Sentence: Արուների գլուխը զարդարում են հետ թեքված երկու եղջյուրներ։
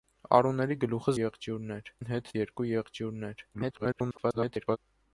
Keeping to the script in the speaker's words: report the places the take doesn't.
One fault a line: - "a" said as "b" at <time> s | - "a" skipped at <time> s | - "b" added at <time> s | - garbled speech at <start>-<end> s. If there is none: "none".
- "զարդարում" said as "եղջյուրներ" at 1.2 s
- "թեքված" skipped at 2.3 s
- garbled speech at 3.5-4.8 s